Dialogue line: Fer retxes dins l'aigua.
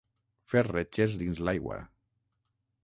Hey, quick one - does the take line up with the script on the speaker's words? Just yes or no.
yes